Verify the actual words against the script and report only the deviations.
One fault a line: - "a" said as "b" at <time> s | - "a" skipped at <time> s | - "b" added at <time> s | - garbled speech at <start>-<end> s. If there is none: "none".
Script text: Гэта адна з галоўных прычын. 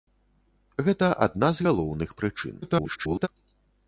- garbled speech at 2.6-3.3 s